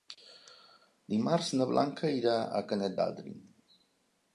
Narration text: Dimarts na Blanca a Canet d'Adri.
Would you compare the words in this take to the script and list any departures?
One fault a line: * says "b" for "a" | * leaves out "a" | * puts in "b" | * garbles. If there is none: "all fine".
* puts in "irà"